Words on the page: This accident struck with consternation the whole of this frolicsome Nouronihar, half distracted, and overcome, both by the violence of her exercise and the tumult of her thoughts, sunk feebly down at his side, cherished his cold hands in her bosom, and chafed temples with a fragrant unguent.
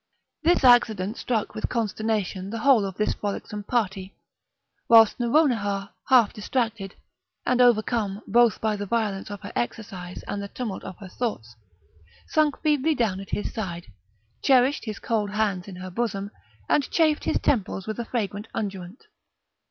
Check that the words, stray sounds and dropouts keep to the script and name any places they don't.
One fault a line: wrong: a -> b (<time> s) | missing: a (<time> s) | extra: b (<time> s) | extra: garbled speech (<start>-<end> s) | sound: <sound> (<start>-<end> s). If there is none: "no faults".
extra: party whilst (3.6 s)
extra: his (17.2 s)